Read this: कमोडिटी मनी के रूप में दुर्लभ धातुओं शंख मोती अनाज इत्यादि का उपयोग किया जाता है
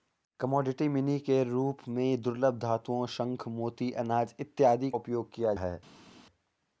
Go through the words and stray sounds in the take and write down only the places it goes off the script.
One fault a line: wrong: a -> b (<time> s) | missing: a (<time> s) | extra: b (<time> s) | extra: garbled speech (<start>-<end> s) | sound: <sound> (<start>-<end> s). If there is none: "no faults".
missing: का (4.9 s)
missing: जाता (5.5 s)